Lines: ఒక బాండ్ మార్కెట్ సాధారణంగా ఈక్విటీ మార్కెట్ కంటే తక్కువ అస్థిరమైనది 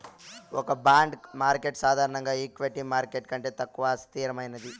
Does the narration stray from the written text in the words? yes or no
no